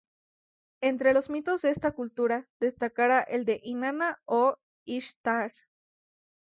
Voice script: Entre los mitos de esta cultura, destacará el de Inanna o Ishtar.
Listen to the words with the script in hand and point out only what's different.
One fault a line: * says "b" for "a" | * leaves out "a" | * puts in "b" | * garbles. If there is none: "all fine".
all fine